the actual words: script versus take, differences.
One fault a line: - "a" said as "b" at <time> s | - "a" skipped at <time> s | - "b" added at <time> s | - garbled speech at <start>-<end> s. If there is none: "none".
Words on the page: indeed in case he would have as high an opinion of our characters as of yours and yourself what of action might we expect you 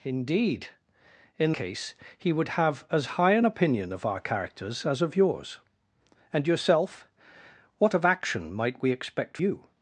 none